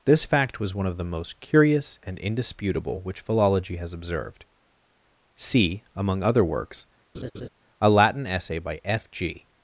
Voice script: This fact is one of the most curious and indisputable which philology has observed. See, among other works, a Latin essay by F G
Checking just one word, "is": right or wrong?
wrong